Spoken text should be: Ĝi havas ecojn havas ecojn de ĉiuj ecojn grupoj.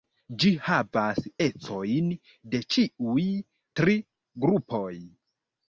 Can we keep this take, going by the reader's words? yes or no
no